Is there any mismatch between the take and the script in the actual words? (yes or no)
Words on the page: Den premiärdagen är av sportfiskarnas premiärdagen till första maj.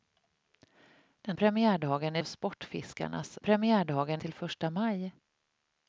no